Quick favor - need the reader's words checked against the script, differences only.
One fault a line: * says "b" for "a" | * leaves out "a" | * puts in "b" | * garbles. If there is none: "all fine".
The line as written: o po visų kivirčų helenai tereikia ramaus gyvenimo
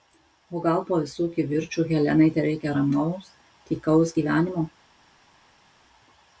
* puts in "gal"
* puts in "tykaus"